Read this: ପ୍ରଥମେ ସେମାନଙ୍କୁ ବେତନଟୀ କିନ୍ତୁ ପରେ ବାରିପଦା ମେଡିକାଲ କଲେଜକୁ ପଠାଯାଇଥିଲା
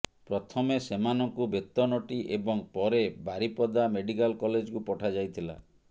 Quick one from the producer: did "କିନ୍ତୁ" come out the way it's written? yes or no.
no